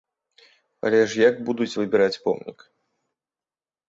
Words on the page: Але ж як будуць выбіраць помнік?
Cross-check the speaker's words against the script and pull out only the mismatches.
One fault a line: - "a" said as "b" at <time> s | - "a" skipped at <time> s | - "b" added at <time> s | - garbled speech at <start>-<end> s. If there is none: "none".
none